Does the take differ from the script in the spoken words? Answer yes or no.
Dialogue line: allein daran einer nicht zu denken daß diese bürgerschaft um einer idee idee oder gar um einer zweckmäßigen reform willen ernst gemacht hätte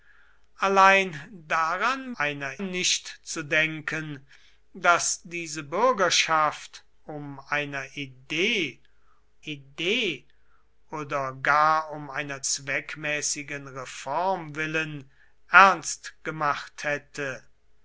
no